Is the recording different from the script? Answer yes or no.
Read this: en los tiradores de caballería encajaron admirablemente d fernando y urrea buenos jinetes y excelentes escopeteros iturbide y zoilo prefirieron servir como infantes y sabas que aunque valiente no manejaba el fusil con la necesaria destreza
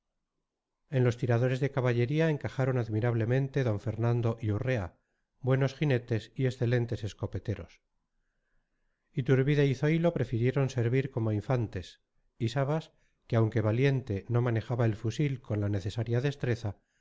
no